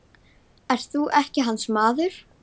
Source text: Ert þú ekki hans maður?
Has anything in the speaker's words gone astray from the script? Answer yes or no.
no